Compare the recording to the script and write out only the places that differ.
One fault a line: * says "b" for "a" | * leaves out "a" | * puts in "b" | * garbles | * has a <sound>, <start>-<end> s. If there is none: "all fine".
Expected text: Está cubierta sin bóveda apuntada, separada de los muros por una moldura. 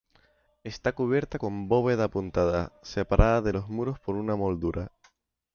* says "con" for "sin"